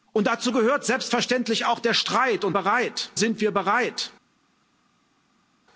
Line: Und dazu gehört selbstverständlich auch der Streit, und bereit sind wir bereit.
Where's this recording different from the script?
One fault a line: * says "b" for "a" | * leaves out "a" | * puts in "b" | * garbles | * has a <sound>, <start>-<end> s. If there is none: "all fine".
all fine